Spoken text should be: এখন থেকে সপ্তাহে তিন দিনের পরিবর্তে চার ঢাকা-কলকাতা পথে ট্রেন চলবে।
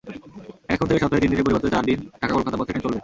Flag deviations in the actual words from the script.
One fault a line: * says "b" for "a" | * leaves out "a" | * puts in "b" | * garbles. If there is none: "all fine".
* puts in "দিন"